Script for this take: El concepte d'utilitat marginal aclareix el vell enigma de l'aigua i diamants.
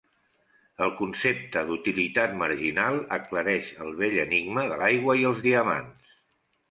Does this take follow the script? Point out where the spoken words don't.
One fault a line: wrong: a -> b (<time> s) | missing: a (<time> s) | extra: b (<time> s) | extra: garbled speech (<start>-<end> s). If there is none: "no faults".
extra: els (5.3 s)